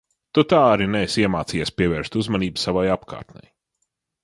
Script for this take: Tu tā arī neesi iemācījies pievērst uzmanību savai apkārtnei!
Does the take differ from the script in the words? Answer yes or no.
no